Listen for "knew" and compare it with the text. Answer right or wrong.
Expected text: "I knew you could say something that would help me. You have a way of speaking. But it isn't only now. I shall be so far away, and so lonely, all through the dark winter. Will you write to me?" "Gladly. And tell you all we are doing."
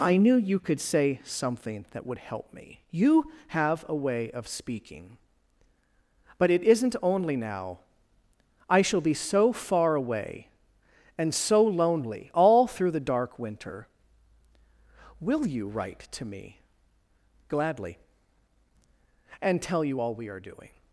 right